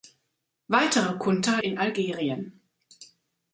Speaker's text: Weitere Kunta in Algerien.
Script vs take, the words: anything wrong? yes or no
no